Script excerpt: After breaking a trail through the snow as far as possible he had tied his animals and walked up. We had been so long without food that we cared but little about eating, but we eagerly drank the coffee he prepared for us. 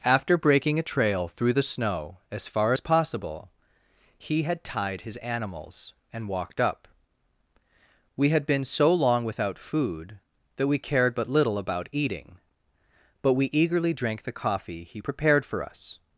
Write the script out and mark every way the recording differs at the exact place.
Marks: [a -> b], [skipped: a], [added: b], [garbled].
After breaking a trail through the snow as far as possible he had tied his animals and walked up. We had been so long without food that we cared but little about eating, but we eagerly drank the coffee he prepared for us.